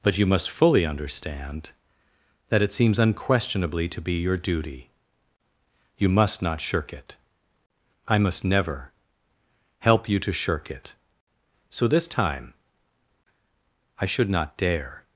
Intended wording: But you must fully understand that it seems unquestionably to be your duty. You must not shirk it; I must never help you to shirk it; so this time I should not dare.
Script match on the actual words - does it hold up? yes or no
yes